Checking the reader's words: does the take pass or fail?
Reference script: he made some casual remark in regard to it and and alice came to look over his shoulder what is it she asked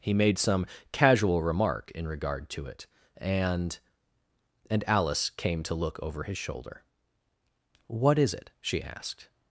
pass